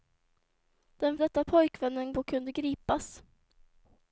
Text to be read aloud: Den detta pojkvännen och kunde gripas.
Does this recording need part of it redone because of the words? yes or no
no